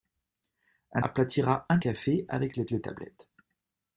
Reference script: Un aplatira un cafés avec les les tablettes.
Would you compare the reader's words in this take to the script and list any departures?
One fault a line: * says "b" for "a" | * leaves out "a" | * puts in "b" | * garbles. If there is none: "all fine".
all fine